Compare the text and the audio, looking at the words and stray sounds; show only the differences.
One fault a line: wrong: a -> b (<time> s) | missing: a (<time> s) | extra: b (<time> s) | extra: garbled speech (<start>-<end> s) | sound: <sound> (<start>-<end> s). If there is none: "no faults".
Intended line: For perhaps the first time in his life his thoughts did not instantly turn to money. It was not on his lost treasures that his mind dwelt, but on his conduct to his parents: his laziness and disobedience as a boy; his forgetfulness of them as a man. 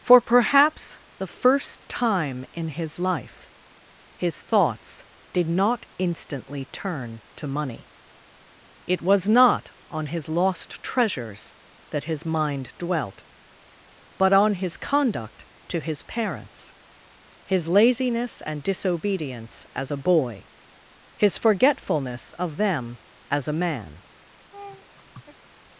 sound: laugh (24.5-25.5 s)